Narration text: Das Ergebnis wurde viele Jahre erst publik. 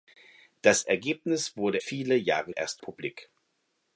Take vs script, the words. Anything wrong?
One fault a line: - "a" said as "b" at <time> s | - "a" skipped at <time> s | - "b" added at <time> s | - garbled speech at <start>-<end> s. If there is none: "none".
none